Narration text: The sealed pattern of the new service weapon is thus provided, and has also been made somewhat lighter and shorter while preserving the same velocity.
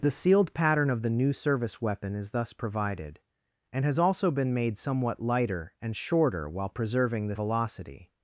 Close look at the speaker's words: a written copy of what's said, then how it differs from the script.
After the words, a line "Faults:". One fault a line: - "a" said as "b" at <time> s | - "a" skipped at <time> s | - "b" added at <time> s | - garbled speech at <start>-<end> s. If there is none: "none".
The sealed pattern of the new service weapon is thus provided, and has also been made somewhat lighter and shorter while preserving the velocity.
Faults:
- "same" skipped at 7.3 s